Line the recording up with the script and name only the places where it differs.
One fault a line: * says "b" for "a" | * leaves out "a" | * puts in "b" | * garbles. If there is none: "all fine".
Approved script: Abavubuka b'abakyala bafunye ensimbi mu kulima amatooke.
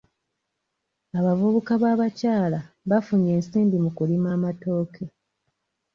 all fine